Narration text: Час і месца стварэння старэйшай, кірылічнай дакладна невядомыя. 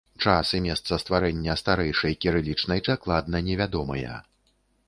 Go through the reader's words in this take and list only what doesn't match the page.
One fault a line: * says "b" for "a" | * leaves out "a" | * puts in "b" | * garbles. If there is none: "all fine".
all fine